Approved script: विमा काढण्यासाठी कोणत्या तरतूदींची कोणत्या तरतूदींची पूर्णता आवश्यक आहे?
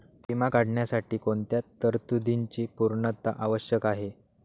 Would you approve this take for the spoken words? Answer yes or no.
no